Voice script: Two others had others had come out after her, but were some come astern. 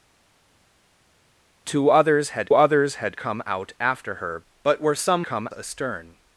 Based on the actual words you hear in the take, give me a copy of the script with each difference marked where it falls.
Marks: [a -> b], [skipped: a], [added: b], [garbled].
Two others had others had come out after her, but were some come astern.